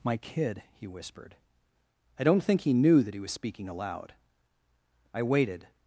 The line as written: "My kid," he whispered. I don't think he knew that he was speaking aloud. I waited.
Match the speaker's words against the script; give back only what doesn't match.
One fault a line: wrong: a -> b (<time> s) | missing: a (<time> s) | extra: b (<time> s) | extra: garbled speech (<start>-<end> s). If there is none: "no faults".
no faults